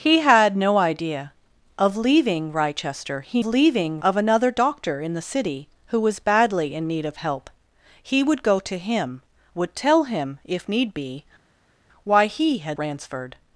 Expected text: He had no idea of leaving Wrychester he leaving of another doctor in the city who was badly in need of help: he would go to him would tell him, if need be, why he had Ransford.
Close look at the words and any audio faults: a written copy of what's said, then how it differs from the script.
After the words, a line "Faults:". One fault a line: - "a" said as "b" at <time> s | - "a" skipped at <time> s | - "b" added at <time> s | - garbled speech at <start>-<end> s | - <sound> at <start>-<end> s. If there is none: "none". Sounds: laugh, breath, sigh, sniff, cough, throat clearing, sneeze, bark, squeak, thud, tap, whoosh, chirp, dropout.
He had no idea of leaving Wrychester he leaving of another doctor in the city who was badly in need of help: he would go to him would tell him, if need be, why he had Ransford.
Faults:
none